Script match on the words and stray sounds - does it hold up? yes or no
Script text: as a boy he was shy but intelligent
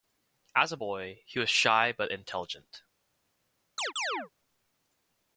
no